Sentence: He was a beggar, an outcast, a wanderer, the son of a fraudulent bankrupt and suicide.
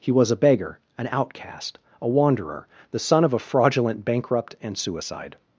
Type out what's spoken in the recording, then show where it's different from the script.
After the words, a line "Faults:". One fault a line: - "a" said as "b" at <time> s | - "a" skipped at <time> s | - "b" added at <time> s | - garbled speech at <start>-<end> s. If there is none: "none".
He was a beggar, an outcast, a wanderer, the son of a fraudulent bankrupt and suicide.
Faults:
none